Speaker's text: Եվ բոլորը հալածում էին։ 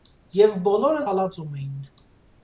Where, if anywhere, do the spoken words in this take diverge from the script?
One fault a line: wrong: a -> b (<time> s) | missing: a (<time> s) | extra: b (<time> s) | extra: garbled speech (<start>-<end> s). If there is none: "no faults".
no faults